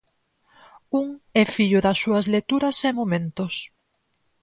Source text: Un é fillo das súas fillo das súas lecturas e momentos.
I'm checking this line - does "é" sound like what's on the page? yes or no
yes